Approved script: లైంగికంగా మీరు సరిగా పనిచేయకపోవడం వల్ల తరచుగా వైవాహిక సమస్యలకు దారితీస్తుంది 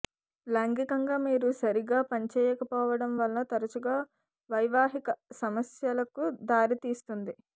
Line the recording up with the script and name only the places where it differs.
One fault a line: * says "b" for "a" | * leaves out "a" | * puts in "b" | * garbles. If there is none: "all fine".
all fine